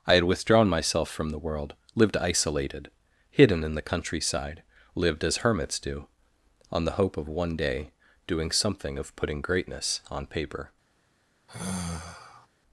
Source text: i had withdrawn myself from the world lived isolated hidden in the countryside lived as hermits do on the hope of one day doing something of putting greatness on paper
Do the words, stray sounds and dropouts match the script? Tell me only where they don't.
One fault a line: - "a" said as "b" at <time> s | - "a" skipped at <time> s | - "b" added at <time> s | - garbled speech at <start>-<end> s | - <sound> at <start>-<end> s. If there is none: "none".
- sigh at 11.5-12.5 s